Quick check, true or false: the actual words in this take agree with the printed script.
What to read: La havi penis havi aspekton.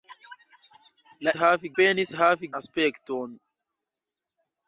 true